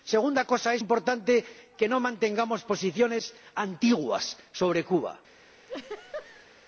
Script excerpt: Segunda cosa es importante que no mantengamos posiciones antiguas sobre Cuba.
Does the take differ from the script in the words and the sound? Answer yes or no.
yes